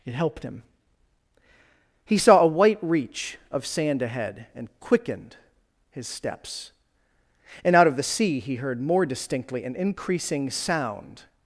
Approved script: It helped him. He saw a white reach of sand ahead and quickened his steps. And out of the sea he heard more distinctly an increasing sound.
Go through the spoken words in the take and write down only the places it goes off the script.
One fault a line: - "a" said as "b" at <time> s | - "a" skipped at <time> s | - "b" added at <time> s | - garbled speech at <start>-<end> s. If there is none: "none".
none